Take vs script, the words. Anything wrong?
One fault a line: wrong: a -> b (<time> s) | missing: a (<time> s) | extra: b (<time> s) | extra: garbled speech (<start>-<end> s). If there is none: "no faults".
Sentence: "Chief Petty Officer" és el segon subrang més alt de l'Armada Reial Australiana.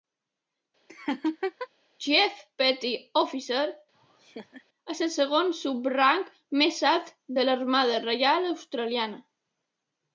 no faults